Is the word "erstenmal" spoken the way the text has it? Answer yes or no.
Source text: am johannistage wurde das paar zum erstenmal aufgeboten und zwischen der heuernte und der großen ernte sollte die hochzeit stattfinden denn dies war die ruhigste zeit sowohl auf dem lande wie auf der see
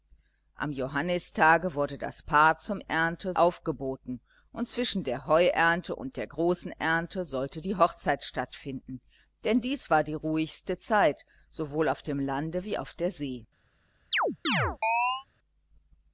no